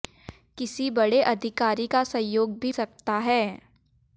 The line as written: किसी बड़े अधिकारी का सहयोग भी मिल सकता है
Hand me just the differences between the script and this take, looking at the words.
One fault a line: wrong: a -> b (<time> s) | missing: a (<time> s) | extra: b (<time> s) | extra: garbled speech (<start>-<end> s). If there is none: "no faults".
missing: मिल (2.7 s)